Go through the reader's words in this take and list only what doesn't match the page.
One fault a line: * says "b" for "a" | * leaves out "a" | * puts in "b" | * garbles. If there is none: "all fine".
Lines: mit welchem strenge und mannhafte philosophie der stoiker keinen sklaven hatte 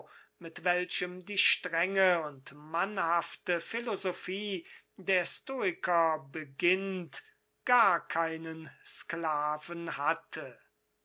* puts in "die"
* puts in "beginnt gar"